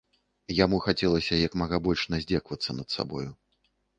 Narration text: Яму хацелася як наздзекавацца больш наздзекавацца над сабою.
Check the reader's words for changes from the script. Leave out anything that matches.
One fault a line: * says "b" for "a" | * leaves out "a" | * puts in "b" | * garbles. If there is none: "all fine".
* says "мага" for "наздзекавацца"